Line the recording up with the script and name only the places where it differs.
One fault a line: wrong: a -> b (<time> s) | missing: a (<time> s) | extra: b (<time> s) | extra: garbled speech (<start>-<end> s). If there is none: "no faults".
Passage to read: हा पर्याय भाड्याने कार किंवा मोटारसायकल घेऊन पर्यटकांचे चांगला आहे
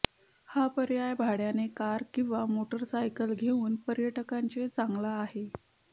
no faults